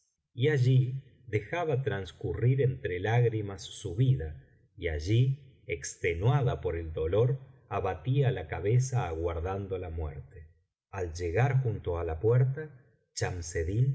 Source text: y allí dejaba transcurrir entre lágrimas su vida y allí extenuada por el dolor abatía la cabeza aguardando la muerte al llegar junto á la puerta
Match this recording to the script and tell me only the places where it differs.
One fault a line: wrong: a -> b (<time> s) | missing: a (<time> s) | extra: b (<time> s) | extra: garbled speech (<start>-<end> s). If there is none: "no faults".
no faults